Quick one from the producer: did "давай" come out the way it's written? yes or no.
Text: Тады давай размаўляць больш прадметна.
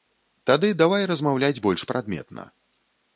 yes